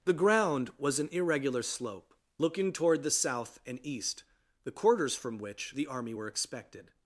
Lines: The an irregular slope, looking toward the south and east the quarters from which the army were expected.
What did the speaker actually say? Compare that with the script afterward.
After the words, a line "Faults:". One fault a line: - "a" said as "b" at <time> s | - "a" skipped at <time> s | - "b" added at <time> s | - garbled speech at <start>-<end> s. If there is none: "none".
The ground was an irregular slope, looking toward the south and east the quarters from which the army were expected.
Faults:
- "ground was" added at 0.1 s